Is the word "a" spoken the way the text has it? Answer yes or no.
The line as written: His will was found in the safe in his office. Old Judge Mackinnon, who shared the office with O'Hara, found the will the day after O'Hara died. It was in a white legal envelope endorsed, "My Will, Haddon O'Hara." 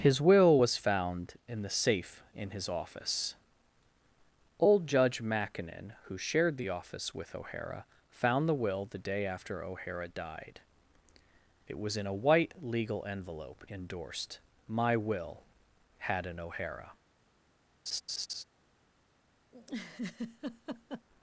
yes